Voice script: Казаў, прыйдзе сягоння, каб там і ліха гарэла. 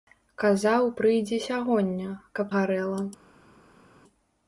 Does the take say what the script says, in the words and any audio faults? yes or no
no